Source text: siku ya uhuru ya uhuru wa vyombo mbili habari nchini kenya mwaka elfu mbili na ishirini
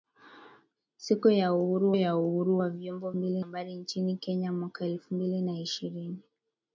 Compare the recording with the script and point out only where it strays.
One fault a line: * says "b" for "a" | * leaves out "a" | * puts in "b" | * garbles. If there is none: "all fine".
all fine